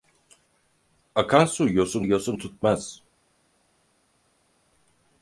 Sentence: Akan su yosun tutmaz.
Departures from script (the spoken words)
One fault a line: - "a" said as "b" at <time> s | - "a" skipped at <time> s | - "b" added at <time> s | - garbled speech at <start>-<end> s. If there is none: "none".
- "yosun" added at 2.0 s